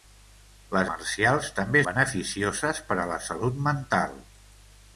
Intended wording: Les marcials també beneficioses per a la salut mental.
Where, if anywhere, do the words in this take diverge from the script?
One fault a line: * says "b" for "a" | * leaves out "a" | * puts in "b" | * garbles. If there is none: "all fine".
all fine